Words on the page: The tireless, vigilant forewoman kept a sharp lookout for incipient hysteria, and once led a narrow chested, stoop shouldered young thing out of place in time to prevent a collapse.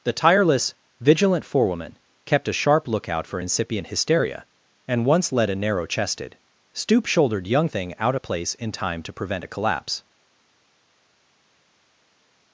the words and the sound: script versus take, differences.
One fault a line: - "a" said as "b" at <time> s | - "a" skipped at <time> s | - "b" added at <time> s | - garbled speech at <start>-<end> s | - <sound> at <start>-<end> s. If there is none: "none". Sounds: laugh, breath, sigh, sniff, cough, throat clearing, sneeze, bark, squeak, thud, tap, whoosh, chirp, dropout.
none